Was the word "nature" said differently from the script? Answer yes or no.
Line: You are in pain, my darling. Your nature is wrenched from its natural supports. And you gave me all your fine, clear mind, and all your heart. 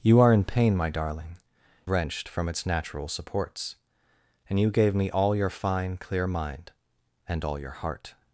yes